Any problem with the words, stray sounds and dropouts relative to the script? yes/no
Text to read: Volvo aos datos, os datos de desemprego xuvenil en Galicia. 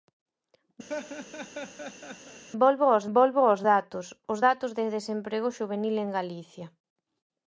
yes